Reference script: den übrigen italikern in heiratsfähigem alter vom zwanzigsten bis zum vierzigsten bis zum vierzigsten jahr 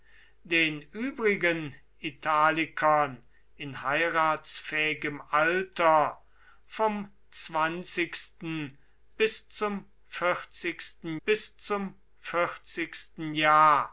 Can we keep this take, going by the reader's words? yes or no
yes